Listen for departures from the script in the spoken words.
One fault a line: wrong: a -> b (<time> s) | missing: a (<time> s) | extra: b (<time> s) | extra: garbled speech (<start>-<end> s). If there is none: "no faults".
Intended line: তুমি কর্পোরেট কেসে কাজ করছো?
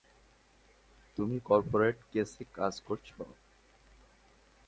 no faults